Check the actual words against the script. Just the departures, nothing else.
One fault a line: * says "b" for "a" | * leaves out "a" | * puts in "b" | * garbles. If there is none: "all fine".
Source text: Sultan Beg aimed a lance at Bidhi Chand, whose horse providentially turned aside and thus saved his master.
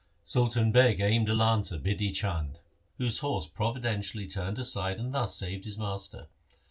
all fine